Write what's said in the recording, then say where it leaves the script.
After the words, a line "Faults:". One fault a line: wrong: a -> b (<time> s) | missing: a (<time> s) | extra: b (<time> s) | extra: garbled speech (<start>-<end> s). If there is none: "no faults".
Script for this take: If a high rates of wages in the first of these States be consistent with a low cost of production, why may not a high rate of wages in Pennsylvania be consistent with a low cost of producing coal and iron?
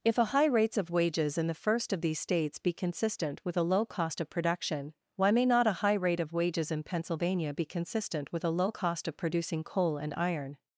If a high rates of wages in the first of these States be consistent with a low cost of production, why may not a high rate of wages in Pennsylvania be consistent with a low cost of producing coal and iron?
Faults:
no faults